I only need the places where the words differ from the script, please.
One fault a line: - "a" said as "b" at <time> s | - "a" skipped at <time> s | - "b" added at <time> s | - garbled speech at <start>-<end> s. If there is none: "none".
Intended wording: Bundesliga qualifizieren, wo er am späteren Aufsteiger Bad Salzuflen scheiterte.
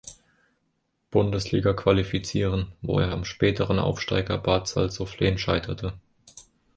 none